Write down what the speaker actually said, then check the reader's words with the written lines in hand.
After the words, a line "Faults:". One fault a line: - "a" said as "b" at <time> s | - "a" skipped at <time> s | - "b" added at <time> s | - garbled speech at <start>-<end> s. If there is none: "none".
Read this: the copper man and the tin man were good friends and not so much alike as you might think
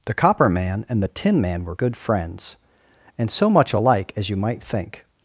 the copper man and the tin man were good friends and so much alike as you might think
Faults:
- "not" skipped at 3.3 s